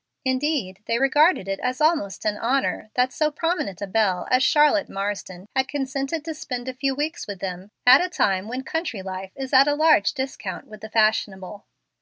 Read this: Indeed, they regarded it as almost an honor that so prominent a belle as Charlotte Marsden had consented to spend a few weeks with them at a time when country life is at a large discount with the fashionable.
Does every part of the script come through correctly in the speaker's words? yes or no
yes